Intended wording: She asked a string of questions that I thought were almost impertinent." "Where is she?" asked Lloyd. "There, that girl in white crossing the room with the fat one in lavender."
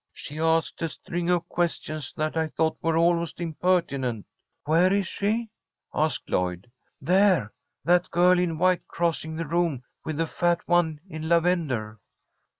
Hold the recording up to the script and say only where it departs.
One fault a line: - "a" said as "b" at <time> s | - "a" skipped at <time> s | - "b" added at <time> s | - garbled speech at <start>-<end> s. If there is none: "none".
none